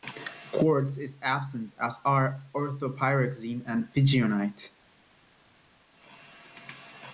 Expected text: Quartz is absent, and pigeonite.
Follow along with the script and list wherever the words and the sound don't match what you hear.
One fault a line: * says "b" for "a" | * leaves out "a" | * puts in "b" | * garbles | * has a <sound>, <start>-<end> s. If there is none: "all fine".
* puts in "as are orthopyroxene"